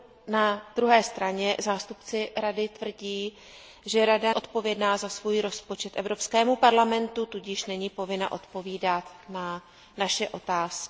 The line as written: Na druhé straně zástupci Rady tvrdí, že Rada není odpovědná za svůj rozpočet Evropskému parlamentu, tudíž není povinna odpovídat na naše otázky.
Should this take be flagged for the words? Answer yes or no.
yes